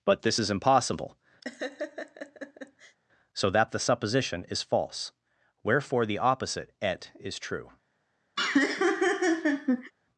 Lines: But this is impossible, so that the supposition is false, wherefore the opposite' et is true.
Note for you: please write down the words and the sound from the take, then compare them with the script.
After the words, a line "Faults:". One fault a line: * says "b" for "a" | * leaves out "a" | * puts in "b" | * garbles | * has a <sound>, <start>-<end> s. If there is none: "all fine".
But this is impossible, so that the supposition is false, wherefore the opposite' et is true.
Faults:
* has a laugh, 1.4-3.0 s
* has a laugh, 8.4-9.9 s